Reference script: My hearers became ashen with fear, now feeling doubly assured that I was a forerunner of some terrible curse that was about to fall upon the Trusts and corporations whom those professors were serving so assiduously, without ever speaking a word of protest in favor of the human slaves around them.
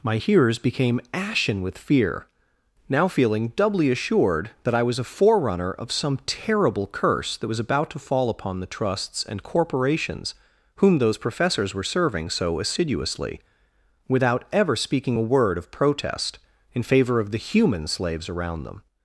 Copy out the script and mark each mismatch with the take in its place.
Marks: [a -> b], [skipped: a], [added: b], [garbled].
My hearers became ashen with fear, now feeling doubly assured that I was a forerunner of some terrible curse that was about to fall upon the Trusts and corporations whom those professors were serving so assiduously, without ever speaking a word of protest in favor of the human slaves around them.